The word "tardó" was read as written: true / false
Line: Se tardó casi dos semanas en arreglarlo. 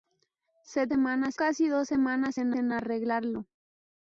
false